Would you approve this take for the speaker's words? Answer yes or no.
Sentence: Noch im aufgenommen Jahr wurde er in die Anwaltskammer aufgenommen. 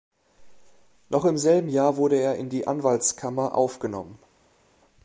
no